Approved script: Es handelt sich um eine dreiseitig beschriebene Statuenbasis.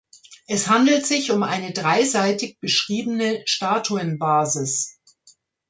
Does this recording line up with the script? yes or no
yes